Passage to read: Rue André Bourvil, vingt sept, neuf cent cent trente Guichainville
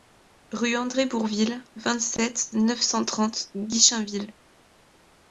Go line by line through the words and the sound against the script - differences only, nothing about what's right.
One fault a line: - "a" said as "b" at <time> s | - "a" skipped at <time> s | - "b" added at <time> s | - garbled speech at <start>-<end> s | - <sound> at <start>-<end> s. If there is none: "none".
- "cent" skipped at 3.0 s